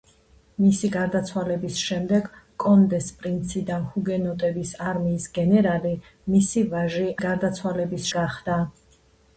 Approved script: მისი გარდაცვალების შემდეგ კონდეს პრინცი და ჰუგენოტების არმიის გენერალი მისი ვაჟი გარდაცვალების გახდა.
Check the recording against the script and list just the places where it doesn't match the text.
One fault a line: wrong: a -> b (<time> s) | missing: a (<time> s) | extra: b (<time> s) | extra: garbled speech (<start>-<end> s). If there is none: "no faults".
no faults